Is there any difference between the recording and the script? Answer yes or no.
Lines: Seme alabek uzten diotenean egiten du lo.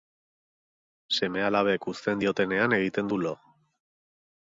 no